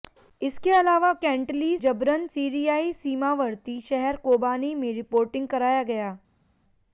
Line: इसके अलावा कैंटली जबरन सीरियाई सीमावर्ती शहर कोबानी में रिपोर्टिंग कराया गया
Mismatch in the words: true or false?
false